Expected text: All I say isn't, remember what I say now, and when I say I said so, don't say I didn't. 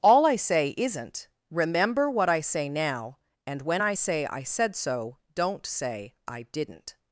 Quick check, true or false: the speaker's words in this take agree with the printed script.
true